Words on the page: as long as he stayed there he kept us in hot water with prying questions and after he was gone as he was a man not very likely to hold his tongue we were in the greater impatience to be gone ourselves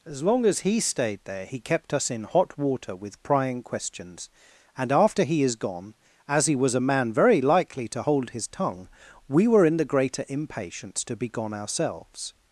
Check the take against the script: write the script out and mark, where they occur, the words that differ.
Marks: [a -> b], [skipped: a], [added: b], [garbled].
as long as he stayed there he kept us in hot water with prying questions and after he [was -> is] gone as he was a man [skipped: not] very likely to hold his tongue we were in the greater impatience to be gone ourselves